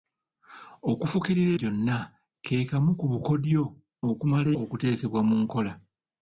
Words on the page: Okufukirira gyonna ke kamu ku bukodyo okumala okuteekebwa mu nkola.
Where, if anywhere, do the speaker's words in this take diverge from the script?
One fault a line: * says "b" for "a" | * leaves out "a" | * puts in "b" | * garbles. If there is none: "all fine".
all fine